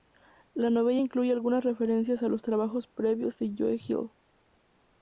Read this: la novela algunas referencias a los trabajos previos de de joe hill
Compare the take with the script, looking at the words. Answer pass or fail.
fail